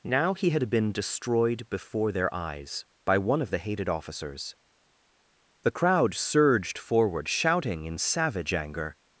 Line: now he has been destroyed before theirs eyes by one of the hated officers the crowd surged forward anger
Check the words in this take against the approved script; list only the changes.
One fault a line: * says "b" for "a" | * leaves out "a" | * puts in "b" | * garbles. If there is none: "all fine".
* says "had" for "has"
* says "their" for "theirs"
* puts in "shouting in savage"